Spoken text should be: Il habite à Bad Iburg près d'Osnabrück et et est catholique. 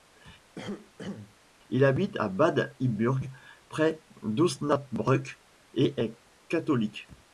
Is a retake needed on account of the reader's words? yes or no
yes